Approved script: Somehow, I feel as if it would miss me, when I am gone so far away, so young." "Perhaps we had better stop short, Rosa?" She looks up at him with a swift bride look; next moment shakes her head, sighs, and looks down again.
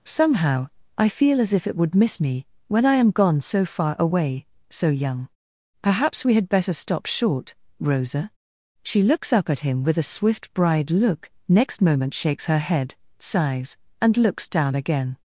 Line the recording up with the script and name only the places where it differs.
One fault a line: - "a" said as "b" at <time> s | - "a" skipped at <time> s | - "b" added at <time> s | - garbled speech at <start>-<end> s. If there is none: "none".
none